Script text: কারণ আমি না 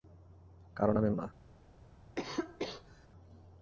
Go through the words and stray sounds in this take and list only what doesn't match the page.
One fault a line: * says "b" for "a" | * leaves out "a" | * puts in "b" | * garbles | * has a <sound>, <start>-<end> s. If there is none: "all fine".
* has a cough, 2.2-3.1 s